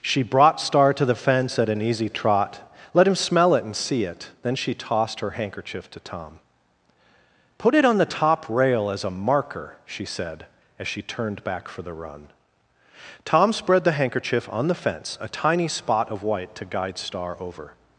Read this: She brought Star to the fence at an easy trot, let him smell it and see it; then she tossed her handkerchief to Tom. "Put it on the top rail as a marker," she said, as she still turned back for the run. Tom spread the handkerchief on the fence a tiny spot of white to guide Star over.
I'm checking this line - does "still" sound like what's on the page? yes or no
no